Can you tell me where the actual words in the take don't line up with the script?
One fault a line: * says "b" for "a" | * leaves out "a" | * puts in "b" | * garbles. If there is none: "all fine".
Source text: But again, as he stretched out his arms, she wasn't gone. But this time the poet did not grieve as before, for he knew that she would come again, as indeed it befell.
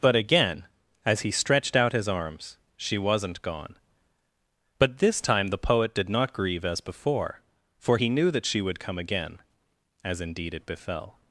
all fine